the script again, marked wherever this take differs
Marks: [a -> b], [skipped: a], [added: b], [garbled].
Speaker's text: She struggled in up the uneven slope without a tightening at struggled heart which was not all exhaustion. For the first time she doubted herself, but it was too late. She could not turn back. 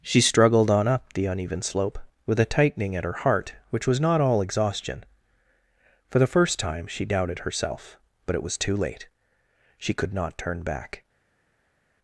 She struggled [in -> on] up the uneven slope [without -> with] a tightening at [struggled -> her] heart which was not all exhaustion. For the first time she doubted herself, but it was too late. She could not turn back.